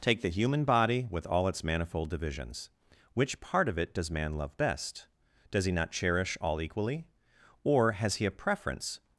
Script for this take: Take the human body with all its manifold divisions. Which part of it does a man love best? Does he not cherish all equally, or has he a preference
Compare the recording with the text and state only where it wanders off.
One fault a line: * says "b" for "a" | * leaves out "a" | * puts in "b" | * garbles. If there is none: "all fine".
* leaves out "a"